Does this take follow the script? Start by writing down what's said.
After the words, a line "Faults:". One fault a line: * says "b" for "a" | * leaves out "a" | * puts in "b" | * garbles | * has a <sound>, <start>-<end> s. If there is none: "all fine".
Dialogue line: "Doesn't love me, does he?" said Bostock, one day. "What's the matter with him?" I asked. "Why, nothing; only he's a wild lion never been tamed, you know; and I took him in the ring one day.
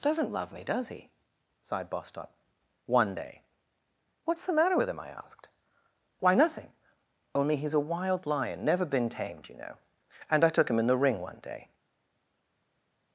"Doesn't love me, does he?" sighed Bostock, one day. "What's the matter with him?" I asked. "Why, nothing; only he's a wild lion never been tamed, you know; and I took him in the ring one day.
Faults:
* says "sighed" for "said"